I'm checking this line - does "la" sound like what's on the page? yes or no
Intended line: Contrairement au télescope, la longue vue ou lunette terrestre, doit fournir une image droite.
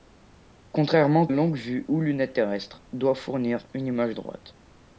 no